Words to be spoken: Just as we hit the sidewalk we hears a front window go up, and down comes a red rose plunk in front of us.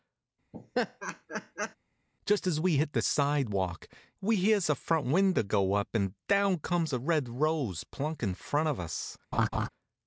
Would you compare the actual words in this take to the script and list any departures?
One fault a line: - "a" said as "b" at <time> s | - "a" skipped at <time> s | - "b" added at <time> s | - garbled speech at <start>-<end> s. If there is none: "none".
none